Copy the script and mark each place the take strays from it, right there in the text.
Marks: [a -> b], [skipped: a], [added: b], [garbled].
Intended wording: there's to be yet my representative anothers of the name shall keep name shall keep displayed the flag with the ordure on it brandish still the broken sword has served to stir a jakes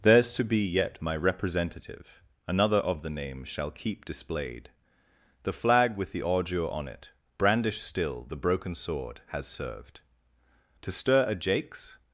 there's to be yet my representative [anothers -> another] of the name shall keep [skipped: name shall keep] displayed the flag with the ordure on it brandish still the broken sword has served to stir a jakes